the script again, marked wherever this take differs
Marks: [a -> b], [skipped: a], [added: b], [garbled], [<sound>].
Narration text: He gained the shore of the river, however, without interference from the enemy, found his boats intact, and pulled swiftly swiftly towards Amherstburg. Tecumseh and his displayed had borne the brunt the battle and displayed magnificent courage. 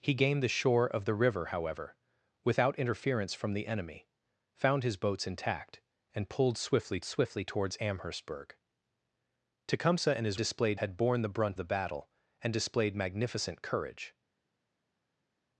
He gained the shore of the river, however, without interference from the enemy, found his boats intact, and pulled swiftly swiftly towards Amherstburg. Tecumseh and his displayed had borne the brunt the battle and displayed magnificent courage.